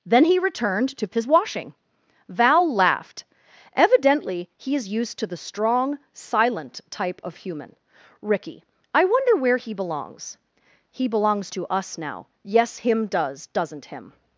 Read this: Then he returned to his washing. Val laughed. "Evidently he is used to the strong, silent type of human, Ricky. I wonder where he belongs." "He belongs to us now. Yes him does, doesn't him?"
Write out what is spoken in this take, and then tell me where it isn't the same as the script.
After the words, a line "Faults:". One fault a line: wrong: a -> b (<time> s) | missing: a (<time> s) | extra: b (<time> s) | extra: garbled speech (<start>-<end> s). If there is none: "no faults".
Then he returned to his washing. Val laughed. "Evidently he is used to the strong, silent type of human, Ricky. I wonder where he belongs." "He belongs to us now. Yes him does, doesn't him?"
Faults:
no faults